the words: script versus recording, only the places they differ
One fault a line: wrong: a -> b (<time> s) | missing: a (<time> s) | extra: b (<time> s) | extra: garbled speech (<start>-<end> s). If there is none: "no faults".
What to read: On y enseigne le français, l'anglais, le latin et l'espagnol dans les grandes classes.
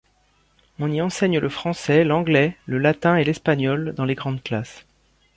no faults